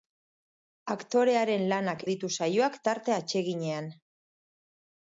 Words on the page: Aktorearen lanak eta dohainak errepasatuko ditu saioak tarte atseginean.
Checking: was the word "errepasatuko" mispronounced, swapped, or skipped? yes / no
yes